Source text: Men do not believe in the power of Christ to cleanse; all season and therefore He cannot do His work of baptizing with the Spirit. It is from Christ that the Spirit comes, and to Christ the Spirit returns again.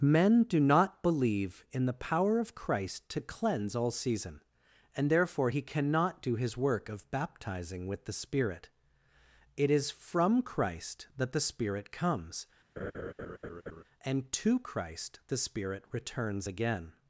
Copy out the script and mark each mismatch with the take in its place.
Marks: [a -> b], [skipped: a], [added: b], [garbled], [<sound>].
Men do not believe in the power of Christ to cleanse; all season and therefore He cannot do His work of baptizing with the Spirit. It is from Christ that the Spirit comes, [laugh] and to Christ the Spirit returns again.